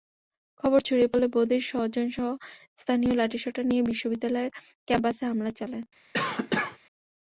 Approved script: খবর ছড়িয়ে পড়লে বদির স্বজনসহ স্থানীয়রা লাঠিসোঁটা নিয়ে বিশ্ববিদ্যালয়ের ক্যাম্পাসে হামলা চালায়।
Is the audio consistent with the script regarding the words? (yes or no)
yes